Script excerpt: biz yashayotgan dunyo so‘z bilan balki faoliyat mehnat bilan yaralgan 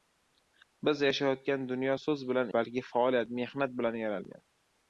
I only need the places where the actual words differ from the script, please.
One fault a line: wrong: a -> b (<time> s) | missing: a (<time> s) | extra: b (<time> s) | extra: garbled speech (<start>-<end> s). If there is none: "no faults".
no faults